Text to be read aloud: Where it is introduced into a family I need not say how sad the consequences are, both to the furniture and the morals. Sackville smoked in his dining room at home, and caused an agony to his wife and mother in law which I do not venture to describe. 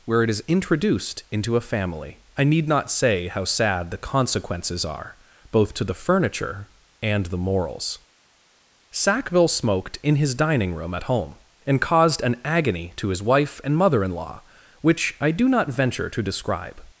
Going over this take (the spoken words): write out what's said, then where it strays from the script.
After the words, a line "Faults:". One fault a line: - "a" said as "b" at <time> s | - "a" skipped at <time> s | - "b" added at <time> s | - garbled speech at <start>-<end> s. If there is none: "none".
Where it is introduced into a family I need not say how sad the consequences are, both to the furniture and the morals. Sackville smoked in his dining room at home, and caused an agony to his wife and mother in law which I do not venture to describe.
Faults:
none